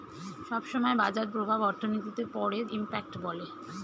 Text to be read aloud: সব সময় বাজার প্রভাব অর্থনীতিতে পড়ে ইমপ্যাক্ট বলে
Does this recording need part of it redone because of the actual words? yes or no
no